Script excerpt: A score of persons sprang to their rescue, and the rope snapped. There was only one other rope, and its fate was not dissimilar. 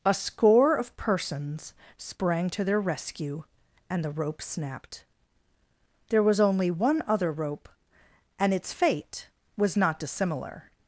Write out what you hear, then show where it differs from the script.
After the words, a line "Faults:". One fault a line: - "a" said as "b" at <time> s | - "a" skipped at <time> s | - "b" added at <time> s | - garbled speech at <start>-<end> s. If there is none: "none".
A score of persons sprang to their rescue, and the rope snapped. There was only one other rope, and its fate was not dissimilar.
Faults:
none